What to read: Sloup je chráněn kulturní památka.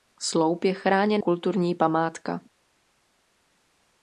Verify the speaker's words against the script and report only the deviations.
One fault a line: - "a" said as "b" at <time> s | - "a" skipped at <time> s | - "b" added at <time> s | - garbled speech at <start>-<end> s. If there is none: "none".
none